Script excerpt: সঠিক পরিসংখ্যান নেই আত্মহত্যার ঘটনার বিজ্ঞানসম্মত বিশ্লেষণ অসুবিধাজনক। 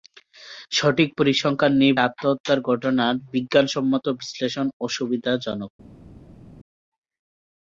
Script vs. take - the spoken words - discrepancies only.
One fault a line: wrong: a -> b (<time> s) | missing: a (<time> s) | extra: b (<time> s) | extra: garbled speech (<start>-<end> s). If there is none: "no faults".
no faults